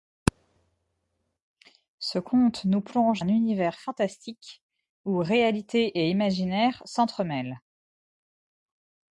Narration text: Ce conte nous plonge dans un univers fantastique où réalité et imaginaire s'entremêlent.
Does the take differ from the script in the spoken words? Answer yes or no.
yes